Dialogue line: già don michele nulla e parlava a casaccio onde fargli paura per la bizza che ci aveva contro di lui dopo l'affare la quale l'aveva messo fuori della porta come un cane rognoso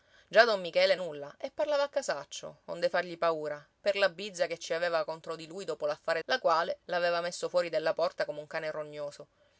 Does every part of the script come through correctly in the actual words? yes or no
yes